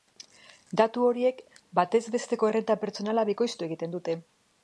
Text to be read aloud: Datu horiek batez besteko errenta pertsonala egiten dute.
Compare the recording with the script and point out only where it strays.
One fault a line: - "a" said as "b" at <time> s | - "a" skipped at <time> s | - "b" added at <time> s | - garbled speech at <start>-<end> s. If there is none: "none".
- "bikoiztu" added at 3.3 s